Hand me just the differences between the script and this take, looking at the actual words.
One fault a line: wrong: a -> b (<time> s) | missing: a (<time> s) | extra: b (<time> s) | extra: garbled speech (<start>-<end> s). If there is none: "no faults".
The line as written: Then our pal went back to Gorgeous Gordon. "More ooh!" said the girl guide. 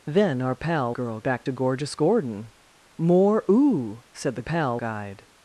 wrong: went -> girl (0.9 s)
wrong: girl -> pal (4.4 s)